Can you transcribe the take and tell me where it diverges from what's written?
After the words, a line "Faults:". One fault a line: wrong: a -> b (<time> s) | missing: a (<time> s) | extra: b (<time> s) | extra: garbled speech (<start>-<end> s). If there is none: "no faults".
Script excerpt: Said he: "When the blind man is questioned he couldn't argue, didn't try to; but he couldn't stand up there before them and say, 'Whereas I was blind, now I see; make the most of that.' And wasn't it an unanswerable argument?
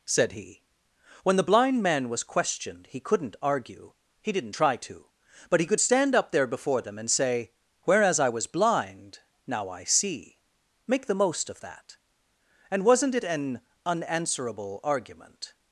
Said he: "When the blind man was questioned he couldn't argue, he didn't try to; but he could stand up there before them and say, 'Whereas I was blind, now I see; make the most of that.' And wasn't it an unanswerable argument?
Faults:
wrong: is -> was (2.1 s)
extra: he (4.2 s)
wrong: couldn't -> could (5.7 s)